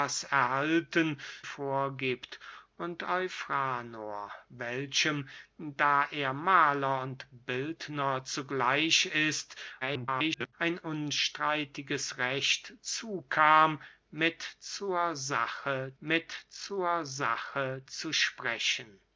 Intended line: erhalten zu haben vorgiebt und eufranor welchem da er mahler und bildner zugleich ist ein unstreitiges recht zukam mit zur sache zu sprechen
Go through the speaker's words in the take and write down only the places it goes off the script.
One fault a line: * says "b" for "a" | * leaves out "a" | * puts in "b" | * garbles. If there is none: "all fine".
* leaves out "zu haben"
* garbles
* puts in "mit zur sache"